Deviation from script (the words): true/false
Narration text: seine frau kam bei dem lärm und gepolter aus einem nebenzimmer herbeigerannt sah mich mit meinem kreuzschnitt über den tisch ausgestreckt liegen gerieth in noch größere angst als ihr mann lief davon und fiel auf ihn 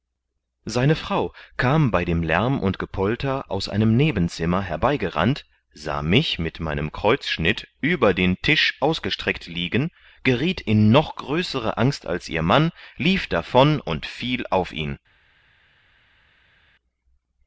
false